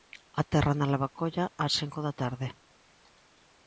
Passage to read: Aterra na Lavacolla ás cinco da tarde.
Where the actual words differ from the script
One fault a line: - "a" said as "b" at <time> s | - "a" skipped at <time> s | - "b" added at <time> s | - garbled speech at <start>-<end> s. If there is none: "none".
none